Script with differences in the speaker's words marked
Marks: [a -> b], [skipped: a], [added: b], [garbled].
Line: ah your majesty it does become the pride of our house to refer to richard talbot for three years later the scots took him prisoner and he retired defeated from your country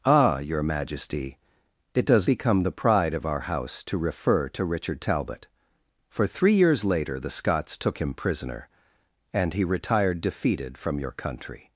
ah your majesty it does become the pride of our house to refer to richard talbot for three years later the scots took him prisoner and he retired defeated from your country